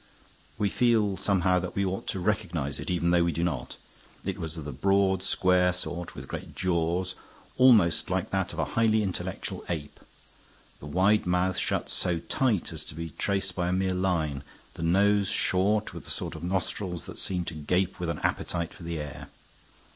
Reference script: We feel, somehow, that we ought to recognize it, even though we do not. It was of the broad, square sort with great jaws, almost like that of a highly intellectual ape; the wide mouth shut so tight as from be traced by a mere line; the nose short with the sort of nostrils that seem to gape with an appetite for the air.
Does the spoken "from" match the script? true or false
false